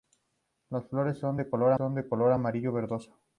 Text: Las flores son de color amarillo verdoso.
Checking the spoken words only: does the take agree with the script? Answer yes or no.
no